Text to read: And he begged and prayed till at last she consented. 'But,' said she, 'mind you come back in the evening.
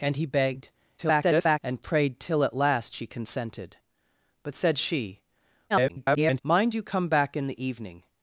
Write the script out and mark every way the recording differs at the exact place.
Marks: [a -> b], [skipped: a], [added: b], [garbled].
And he begged [garbled] and prayed till at last she consented. 'But,' said she, [garbled] 'mind you come back in the evening.